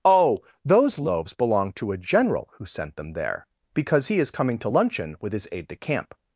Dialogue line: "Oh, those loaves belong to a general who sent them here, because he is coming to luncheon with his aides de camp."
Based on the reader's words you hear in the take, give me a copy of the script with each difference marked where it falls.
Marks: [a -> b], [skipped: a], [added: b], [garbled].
"Oh, those loaves belong to a general who sent them [here, -> there] because he is coming to luncheon with his [aides -> aide] de camp."